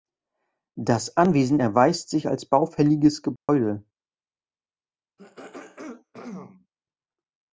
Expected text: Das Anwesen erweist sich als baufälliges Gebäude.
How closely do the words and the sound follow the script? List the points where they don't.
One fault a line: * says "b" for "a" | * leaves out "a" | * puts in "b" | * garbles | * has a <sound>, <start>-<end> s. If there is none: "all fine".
* has a dropout, 3.4-3.5 s
* has a throat clearing, 5.2-6.7 s